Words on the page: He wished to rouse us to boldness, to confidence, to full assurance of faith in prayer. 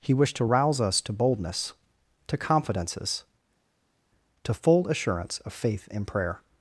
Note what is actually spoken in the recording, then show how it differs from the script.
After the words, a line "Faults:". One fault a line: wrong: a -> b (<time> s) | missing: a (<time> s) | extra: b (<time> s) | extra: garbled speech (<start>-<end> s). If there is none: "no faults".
He wished to rouse us to boldness, to confidences, to full assurance of faith in prayer.
Faults:
wrong: confidence -> confidences (2.4 s)